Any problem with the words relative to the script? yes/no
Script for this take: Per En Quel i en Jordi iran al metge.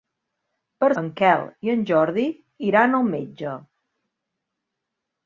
no